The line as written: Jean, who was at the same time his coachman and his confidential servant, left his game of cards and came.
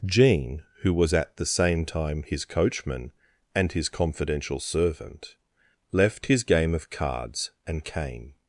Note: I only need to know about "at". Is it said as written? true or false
true